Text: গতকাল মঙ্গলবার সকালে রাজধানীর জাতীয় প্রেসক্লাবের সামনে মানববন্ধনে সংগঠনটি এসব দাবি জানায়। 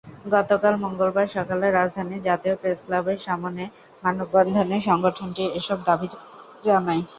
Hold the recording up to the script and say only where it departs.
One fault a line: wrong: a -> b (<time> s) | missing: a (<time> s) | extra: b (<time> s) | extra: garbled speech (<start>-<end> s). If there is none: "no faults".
no faults